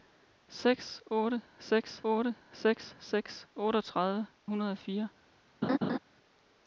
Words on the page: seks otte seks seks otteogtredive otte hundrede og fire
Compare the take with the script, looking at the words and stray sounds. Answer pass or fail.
fail